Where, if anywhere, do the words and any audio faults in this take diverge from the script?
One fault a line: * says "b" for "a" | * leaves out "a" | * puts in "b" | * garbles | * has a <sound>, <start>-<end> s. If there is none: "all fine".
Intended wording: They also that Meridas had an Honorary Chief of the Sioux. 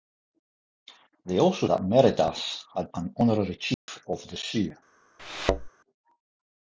* has a dropout, 3.7-3.9 s
* has a thud, 5.2-5.7 s